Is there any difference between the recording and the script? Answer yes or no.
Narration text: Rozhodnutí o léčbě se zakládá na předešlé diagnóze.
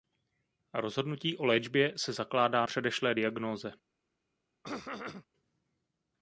yes